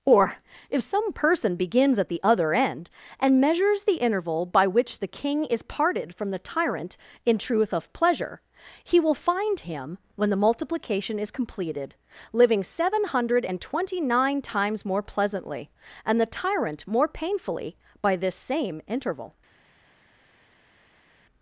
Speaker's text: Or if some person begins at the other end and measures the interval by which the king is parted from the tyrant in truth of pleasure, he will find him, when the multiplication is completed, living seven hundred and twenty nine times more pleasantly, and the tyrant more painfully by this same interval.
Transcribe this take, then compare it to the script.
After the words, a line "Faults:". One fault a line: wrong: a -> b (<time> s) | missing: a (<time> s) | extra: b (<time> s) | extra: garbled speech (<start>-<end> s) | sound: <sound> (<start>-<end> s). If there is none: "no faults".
Or if some person begins at the other end and measures the interval by which the king is parted from the tyrant in truth of pleasure, he will find him, when the multiplication is completed, living seven hundred and twenty nine times more pleasantly, and the tyrant more painfully by this same interval.
Faults:
no faults